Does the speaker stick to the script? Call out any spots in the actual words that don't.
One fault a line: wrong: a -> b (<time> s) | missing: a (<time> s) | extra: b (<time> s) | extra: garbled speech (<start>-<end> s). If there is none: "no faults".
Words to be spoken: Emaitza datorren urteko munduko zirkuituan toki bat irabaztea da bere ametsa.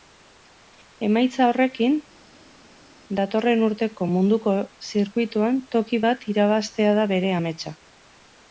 extra: horrekin (1.5 s)